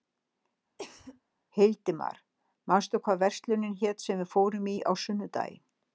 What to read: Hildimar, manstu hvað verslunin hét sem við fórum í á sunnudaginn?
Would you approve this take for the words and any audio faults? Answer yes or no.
no